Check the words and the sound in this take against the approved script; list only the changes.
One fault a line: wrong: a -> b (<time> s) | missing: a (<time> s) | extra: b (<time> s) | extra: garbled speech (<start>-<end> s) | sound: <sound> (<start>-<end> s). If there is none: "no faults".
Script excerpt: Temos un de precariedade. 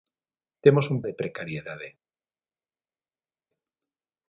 no faults